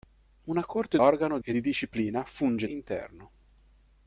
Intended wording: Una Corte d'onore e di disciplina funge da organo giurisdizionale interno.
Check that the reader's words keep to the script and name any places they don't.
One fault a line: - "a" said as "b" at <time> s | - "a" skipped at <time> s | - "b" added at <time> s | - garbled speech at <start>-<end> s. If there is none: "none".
- "d'onore" said as "organo" at 1.0 s
- "da organo giurisdizionale" skipped at 2.7 s